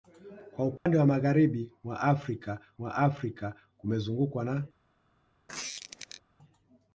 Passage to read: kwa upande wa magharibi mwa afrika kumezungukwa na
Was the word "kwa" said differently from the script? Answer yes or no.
no